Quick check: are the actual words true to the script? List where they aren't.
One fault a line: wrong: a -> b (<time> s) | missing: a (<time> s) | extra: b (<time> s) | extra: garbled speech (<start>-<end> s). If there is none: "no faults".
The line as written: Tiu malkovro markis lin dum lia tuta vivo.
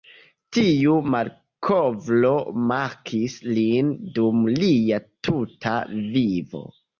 no faults